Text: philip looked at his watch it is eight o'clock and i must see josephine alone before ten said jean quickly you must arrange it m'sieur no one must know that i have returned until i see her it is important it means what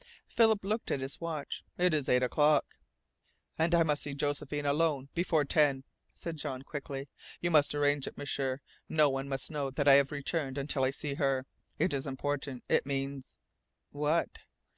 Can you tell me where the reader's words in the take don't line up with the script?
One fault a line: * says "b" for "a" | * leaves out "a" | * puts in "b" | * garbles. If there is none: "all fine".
all fine